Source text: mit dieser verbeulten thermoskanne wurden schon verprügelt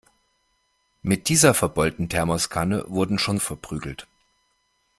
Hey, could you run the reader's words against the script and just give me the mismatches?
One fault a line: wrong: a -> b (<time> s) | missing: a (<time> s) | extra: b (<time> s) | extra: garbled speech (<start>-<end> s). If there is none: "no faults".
no faults